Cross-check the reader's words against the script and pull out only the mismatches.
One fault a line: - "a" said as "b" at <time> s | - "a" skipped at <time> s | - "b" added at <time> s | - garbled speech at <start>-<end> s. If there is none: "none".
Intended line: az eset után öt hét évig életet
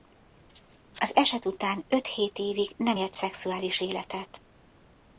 - "nem élt szexuális" added at 2.8 s